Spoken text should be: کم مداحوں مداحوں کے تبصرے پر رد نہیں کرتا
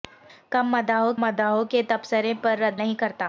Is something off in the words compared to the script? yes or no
no